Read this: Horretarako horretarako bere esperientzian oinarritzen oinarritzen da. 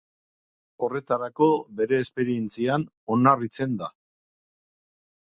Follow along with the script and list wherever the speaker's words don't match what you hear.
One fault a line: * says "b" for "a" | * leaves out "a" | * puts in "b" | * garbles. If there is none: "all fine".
* leaves out "horretarako"
* leaves out "oinarritzen"